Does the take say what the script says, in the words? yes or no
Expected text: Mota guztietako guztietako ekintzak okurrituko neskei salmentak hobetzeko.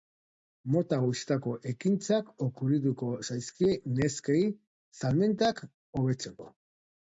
no